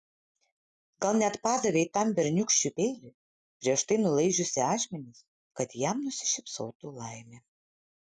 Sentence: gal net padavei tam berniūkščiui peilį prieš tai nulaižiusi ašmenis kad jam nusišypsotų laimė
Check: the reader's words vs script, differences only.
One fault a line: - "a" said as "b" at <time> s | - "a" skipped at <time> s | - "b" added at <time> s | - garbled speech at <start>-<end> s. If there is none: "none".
none